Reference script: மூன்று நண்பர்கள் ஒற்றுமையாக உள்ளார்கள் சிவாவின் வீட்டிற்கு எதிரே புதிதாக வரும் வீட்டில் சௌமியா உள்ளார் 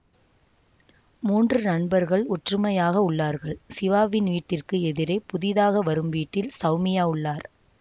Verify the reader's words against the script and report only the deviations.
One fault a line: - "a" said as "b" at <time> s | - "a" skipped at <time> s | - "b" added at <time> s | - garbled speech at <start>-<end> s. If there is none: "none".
none